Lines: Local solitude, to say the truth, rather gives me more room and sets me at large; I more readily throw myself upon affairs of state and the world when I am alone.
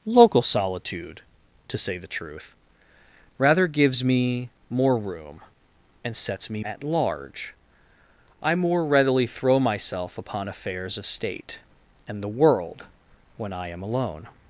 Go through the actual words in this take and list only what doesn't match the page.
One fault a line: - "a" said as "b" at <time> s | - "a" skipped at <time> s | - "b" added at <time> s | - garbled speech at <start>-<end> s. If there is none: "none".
none